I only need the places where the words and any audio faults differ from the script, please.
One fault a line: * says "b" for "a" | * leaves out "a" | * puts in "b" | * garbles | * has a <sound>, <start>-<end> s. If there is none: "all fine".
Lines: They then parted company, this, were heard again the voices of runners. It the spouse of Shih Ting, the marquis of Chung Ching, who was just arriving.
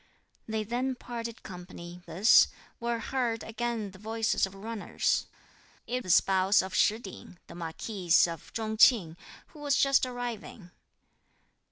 all fine